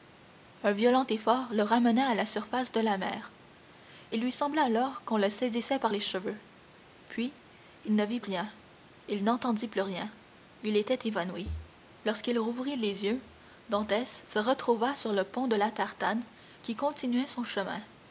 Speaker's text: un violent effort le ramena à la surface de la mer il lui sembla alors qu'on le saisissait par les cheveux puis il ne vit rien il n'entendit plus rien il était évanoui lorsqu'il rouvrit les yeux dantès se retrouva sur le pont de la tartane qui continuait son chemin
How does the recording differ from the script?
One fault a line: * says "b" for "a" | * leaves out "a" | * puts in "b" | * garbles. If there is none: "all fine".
all fine